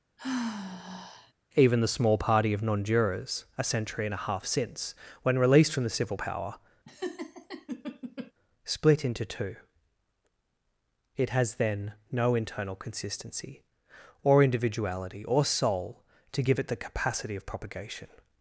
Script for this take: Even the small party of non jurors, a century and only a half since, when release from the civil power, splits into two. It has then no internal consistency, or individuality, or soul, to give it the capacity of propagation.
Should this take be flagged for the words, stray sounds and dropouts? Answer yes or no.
yes